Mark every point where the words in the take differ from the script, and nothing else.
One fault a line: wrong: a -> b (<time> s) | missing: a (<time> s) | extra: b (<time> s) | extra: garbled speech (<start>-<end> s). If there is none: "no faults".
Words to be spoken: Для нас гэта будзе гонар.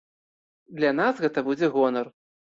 no faults